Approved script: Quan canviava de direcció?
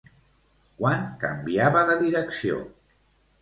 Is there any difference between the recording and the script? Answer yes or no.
no